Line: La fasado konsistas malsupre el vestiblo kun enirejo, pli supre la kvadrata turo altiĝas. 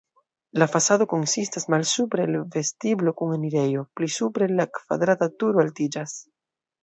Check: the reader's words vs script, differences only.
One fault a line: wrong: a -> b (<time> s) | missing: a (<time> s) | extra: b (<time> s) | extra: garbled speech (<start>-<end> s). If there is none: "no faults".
no faults